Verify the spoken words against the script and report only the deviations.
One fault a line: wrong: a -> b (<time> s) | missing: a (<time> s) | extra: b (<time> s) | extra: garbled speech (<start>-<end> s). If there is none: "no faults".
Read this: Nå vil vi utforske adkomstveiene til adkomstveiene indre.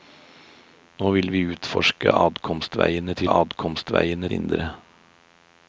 no faults